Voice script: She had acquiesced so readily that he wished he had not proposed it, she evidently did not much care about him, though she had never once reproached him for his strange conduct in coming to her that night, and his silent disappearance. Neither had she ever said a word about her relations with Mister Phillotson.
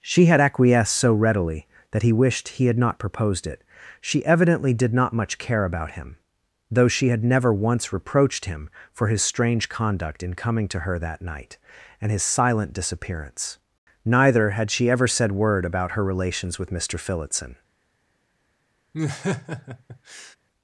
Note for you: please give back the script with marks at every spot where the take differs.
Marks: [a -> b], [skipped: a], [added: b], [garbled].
She had acquiesced so readily that he wished he had not proposed it, she evidently did not much care about him, though she had never once reproached him for his strange conduct in coming to her that night, and his silent disappearance. Neither had she ever said [skipped: a] word about her relations with Mister Phillotson.